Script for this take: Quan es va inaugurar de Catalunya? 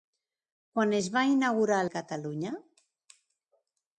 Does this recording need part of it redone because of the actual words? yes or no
no